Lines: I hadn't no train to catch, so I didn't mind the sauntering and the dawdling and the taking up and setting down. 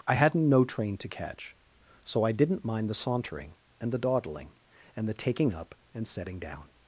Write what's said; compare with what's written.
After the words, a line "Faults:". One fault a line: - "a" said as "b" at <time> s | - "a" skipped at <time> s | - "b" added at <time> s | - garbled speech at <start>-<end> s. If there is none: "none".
I hadn't no train to catch, so I didn't mind the sauntering and the dawdling and the taking up and setting down.
Faults:
none